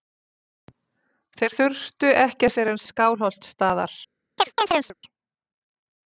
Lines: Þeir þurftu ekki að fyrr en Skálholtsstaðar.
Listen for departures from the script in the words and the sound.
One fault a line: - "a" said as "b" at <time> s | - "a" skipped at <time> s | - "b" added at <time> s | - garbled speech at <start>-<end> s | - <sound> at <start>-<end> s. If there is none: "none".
- chirp at 4.4-4.9 s